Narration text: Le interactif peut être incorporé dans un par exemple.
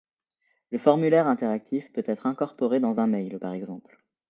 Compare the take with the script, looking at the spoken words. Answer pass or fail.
fail